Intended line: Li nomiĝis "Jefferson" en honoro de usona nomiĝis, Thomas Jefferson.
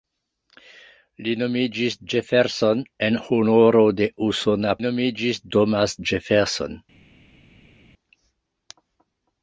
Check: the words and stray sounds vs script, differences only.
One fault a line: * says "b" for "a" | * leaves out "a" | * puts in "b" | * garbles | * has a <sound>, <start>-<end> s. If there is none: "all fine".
all fine